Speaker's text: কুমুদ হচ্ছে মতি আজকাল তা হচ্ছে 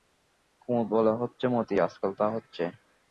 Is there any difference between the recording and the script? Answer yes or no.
yes